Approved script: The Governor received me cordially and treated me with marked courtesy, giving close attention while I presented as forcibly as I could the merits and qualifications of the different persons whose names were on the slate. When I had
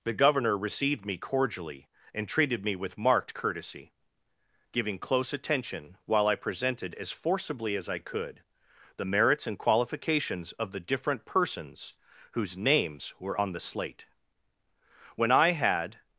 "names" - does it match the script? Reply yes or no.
yes